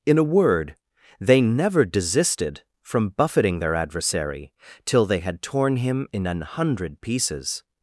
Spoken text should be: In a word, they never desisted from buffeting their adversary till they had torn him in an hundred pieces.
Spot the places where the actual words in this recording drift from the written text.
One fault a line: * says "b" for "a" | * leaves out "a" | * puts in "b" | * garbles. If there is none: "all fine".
all fine